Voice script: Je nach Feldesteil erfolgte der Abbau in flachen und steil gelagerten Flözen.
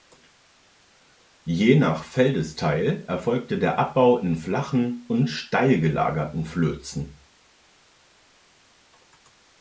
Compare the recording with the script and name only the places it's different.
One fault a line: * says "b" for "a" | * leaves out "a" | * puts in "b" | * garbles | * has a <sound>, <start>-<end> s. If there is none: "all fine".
all fine